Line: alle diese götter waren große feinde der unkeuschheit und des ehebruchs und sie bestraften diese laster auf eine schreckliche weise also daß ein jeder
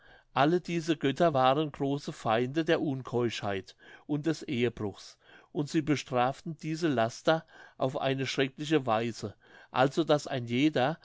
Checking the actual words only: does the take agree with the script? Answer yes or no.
yes